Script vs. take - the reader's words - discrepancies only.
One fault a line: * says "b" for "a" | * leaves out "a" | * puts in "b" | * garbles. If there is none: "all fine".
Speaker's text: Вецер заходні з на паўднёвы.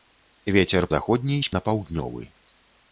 all fine